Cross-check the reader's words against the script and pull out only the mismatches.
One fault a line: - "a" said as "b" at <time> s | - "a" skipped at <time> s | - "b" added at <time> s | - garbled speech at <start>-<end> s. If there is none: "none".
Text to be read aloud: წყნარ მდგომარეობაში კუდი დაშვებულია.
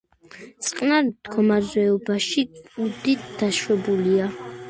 none